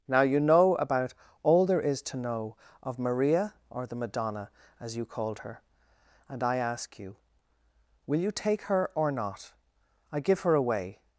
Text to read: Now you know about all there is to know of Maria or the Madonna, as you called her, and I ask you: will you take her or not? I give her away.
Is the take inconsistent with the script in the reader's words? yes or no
no